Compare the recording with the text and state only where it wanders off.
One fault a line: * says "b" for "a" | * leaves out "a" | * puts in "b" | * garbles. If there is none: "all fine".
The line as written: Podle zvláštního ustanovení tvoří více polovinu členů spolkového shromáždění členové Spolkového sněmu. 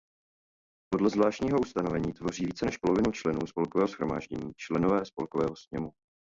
* puts in "než"